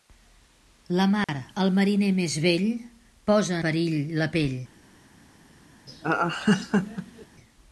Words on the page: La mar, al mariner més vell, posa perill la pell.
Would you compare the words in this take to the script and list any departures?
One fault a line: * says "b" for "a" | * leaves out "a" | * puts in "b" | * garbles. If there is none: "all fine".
all fine